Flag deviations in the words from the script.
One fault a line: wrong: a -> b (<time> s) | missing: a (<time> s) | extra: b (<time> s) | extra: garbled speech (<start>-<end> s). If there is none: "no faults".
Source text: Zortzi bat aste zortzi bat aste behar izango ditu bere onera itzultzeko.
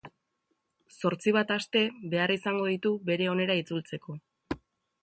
missing: zortzi bat aste (1.8 s)